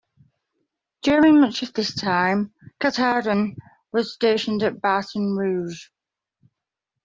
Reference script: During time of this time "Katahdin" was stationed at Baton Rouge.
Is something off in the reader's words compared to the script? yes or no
yes